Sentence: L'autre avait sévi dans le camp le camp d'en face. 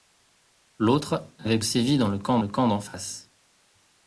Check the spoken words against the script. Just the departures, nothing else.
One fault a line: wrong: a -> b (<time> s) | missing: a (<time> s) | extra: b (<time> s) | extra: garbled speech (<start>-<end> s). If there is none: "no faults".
no faults